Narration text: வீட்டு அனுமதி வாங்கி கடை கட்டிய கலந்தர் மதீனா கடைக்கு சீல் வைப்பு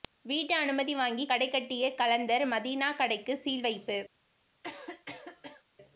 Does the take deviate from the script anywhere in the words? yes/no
no